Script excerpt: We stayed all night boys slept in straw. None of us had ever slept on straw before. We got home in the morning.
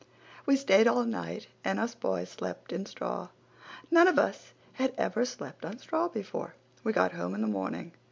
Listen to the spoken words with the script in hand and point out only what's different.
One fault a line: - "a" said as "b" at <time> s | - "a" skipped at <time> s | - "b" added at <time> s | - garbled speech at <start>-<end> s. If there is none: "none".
- "and us" added at 1.6 s